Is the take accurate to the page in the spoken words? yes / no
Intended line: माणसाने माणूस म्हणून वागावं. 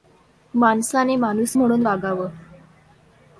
yes